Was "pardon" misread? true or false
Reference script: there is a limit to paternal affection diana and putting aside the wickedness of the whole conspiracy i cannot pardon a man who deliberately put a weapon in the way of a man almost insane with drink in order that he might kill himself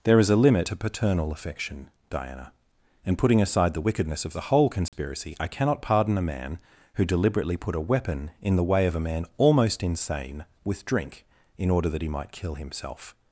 false